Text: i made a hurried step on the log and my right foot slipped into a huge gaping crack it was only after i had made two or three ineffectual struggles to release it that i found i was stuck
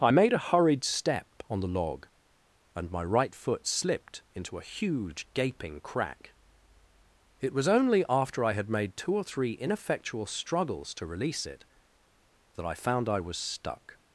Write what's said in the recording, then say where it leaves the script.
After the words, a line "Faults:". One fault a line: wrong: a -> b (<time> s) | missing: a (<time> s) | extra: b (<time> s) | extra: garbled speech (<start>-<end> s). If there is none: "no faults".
i made a hurried step on the log and my right foot slipped into a huge gaping crack it was only after i had made two or three ineffectual struggles to release it that i found i was stuck
Faults:
no faults